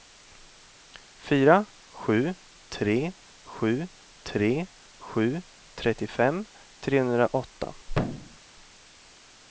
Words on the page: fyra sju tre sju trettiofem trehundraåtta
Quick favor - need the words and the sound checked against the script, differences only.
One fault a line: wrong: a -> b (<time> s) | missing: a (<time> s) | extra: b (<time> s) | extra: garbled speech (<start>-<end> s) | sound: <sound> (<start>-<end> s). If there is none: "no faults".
extra: tre sju (4.2 s)
sound: thud (7.9-8.4 s)